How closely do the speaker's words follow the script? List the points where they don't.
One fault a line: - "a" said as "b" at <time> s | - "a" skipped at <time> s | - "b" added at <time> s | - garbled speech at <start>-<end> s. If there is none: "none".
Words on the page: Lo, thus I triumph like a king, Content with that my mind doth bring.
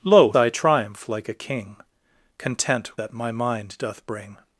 - "thus" skipped at 0.3 s
- "with" skipped at 2.9 s